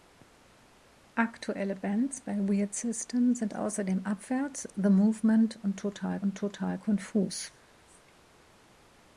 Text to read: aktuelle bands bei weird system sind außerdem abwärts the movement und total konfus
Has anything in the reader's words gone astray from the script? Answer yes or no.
yes